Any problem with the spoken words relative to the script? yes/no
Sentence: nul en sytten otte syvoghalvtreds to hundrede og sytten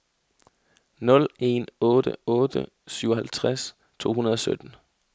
yes